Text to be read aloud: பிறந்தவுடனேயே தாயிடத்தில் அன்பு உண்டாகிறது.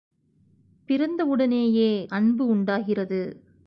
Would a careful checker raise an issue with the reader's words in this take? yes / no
yes